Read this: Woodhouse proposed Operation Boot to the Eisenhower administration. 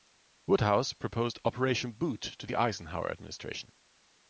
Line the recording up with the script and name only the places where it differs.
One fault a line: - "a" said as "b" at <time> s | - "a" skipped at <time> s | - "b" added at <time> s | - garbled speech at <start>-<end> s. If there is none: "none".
none